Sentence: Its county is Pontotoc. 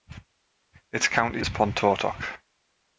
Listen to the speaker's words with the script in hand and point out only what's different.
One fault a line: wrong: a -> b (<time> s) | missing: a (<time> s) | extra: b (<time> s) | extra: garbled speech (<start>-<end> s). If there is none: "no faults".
no faults